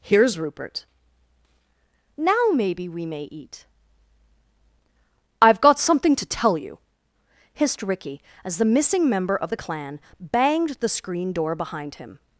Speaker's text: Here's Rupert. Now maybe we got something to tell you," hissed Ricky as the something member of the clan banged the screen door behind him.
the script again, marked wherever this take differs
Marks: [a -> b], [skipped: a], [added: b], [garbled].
Here's Rupert. Now maybe we [added: may eat I've] got something to tell you," hissed Ricky as the [something -> missing] member of the clan banged the screen door behind him.